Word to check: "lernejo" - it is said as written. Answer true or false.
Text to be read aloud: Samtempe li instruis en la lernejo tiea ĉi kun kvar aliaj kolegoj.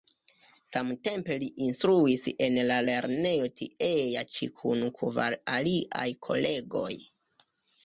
true